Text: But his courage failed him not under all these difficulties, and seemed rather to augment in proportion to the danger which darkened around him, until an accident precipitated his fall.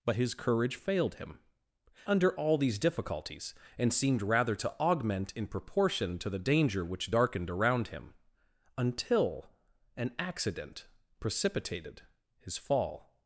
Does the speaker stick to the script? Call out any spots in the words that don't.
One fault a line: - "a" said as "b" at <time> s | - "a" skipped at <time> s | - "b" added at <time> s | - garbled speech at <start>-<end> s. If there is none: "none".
- "not" skipped at 1.4 s